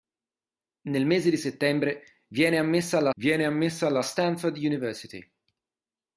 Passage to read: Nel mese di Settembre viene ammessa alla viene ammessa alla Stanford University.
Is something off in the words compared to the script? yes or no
no